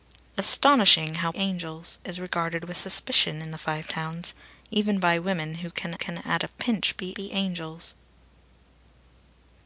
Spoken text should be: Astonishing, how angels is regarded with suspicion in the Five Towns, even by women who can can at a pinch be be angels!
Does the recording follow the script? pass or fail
pass